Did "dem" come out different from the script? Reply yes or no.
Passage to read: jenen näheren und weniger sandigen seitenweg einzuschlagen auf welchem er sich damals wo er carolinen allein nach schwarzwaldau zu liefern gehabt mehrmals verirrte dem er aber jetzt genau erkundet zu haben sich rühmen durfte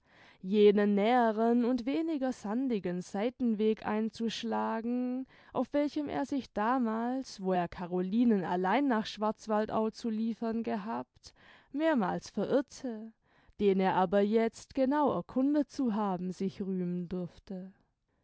yes